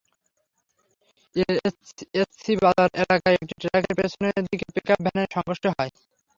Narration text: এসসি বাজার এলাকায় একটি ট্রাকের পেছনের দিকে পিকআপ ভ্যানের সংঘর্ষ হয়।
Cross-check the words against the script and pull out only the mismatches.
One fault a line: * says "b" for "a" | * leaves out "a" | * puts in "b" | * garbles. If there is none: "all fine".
all fine